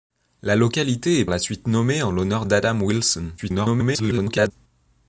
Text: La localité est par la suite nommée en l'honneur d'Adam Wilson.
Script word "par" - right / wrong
wrong